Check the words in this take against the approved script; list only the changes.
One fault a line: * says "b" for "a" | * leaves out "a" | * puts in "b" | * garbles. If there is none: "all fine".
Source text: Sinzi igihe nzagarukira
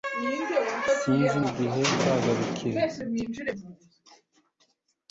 all fine